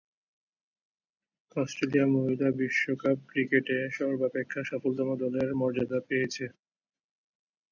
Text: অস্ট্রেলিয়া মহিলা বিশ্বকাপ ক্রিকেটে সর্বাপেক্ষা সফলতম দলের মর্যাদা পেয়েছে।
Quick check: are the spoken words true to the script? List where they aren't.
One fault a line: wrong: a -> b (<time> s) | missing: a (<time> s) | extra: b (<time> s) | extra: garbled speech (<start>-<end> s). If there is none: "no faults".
no faults